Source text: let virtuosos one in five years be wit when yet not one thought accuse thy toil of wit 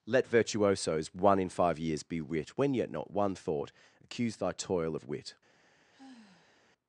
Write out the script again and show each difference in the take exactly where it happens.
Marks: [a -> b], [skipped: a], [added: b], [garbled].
let virtuosos one in five years be wit when yet not one thought accuse thy toil of wit